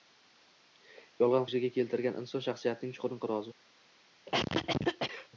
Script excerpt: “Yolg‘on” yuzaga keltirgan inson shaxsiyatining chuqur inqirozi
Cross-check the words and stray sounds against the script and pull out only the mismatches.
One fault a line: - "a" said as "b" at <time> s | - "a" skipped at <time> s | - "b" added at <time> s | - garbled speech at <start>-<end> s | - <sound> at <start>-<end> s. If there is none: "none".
- cough at 4.3-5.3 s